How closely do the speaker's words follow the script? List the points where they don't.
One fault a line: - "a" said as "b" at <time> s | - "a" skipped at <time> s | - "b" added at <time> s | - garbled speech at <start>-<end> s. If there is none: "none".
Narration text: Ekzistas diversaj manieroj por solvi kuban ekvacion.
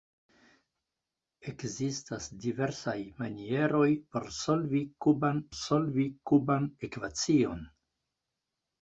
- "solvi kuban" added at 5.6 s